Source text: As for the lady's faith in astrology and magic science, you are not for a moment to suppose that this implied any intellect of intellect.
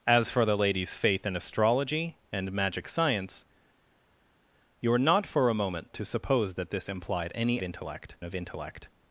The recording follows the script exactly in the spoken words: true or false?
true